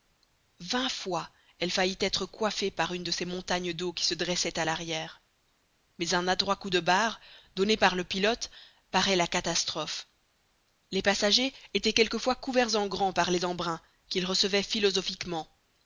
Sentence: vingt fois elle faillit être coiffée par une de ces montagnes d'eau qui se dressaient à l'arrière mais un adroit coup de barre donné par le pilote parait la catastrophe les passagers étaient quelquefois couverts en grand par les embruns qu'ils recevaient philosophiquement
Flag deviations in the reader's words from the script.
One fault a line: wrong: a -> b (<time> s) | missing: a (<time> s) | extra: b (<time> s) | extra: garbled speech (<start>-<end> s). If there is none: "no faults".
no faults